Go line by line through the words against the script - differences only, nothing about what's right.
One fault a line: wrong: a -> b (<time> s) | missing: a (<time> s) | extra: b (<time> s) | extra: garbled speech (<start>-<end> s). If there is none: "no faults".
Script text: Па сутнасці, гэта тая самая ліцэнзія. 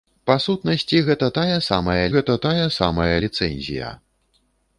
extra: гэта тая самая (2.2 s)